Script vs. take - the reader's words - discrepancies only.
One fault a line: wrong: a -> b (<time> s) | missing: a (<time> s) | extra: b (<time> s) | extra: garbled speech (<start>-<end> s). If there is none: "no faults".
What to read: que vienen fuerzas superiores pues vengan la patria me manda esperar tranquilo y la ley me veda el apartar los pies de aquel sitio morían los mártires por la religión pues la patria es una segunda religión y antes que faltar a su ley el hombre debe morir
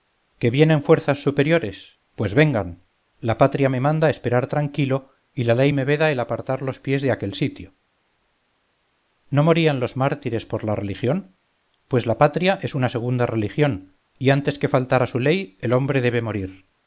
extra: no (9.3 s)